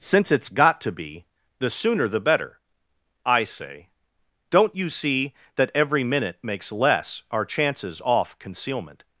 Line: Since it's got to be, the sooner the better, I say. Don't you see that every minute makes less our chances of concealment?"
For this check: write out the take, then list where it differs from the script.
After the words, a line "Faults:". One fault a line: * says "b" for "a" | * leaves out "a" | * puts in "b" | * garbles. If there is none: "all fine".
Since it's got to be, the sooner the better, I say. Don't you see that every minute makes less our chances off concealment?"
Faults:
* says "off" for "of"